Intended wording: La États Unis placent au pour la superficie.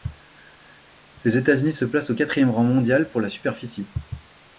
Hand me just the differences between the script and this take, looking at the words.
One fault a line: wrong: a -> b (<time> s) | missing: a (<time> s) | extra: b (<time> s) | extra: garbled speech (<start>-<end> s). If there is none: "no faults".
wrong: La -> Les (1.2 s)
extra: se (1.7 s)
extra: quatrième rang mondial (2.1 s)